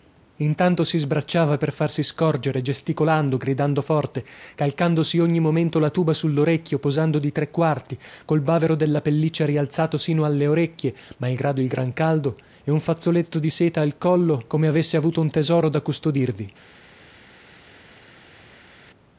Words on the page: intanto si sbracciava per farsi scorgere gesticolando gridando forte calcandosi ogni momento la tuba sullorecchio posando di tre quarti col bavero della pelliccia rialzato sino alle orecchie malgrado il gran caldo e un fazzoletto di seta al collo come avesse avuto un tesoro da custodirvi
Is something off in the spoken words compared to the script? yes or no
no